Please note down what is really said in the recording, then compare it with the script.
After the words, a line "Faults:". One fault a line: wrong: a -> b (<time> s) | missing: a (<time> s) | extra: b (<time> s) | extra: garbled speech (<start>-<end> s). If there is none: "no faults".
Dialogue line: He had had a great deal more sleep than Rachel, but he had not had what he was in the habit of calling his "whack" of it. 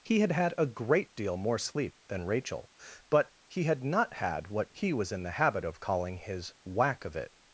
He had had a great deal more sleep than Rachel, but he had not had what he was in the habit of calling his "whack" of it.
Faults:
no faults